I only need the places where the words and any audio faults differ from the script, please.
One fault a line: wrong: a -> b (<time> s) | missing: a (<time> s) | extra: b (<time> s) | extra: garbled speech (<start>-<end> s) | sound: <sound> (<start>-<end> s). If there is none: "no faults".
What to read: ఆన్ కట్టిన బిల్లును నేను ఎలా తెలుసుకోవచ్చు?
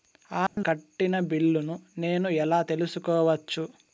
sound: dropout (0.5-0.6 s)